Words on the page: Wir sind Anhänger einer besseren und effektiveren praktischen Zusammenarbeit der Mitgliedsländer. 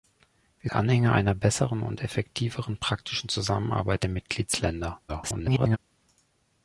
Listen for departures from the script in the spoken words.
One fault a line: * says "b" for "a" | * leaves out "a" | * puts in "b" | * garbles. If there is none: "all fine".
* leaves out "sind"
* garbles